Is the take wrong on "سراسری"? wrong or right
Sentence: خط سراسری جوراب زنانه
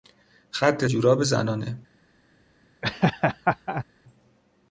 wrong